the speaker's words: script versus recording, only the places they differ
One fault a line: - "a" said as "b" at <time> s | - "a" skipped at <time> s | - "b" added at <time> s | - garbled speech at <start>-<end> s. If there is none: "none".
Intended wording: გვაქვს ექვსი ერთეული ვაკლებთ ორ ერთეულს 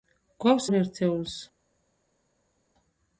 - "ექვსი ერთეული ვაკლებთ" skipped at 0.7 s